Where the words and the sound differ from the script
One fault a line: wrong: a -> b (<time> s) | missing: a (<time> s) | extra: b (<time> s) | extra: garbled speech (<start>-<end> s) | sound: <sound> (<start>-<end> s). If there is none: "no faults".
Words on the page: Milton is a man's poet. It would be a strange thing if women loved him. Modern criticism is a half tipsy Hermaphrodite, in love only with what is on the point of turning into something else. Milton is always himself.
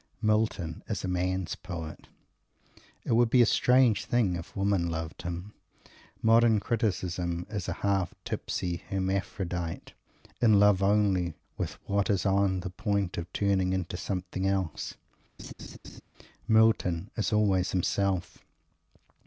sound: laugh (15.4-16.0 s)